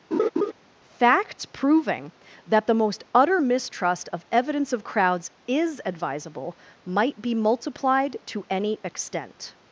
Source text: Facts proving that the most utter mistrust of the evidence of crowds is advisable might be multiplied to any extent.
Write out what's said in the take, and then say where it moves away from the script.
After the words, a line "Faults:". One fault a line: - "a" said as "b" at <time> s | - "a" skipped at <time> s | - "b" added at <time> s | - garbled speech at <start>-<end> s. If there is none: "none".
Facts proving that the most utter mistrust of evidence of crowds is advisable might be multiplied to any extent.
Faults:
- "the" skipped at 4.3 s